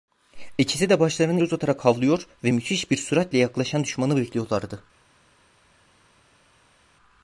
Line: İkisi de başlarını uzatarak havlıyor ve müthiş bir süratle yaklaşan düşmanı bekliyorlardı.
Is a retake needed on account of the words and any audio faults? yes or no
no